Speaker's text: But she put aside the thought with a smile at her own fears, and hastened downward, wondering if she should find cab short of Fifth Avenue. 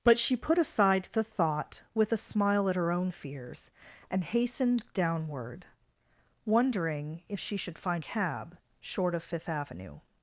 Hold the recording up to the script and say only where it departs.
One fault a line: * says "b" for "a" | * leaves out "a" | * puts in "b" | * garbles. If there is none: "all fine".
all fine